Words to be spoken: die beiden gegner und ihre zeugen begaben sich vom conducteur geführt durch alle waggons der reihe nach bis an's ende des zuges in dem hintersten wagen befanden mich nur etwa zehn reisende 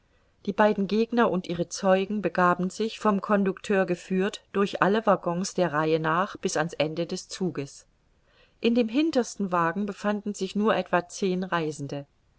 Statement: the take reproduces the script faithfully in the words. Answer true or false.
false